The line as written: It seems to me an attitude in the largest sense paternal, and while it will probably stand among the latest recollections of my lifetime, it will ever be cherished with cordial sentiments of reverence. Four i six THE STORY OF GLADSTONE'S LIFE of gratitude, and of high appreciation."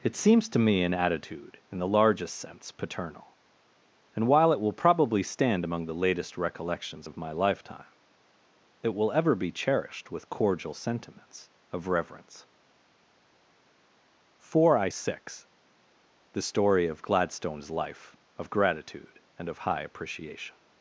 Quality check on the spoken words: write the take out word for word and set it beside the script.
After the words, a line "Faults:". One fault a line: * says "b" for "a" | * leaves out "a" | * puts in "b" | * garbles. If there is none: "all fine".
It seems to me an attitude in the largest sense paternal, and while it will probably stand among the latest recollections of my lifetime, it will ever be cherished with cordial sentiments of reverence. Four i six THE STORY OF GLADSTONE'S LIFE of gratitude, and of high appreciation."
Faults:
all fine